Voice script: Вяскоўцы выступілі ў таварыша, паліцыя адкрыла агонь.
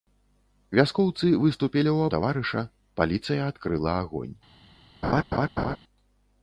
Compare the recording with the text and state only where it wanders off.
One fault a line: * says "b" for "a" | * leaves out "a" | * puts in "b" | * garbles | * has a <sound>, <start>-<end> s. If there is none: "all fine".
* has a laugh, 5.0-5.8 s